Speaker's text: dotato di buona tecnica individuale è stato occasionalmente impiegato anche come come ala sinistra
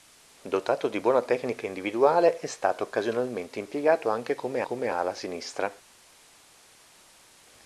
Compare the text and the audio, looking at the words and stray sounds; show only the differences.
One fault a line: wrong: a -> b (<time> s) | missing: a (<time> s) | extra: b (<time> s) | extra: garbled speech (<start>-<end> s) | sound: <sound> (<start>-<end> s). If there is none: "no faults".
no faults